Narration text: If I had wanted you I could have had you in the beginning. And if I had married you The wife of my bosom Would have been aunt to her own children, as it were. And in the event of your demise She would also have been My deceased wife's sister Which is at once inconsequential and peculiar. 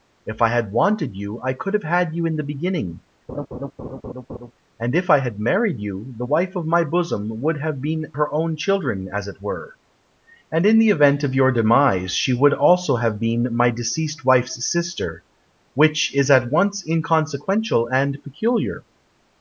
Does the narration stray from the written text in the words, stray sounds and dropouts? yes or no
yes